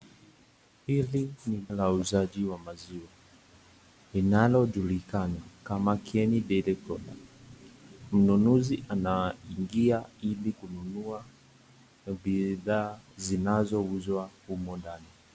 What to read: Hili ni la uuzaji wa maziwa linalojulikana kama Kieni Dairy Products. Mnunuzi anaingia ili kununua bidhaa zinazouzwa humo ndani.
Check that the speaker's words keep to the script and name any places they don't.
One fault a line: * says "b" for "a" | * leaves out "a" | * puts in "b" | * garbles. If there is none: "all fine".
all fine